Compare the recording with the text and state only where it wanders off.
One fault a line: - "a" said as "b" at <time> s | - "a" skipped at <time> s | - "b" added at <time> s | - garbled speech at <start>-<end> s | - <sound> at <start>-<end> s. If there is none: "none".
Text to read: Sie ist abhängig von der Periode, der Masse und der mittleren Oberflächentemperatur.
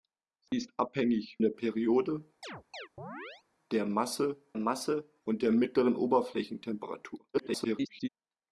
- dropout at 0.5-0.5 s
- "von" skipped at 1.4 s
- chirp at 2.4-3.4 s
- "Masse" added at 4.6 s
- garbled speech at 7.3-8.1 s